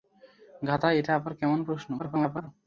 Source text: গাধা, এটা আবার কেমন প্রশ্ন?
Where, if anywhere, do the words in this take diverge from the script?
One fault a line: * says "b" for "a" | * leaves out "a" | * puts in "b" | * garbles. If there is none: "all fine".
* garbles